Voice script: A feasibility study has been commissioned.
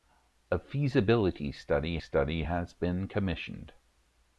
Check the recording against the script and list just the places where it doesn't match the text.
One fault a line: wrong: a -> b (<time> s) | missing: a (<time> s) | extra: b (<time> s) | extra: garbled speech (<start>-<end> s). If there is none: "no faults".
extra: study (1.9 s)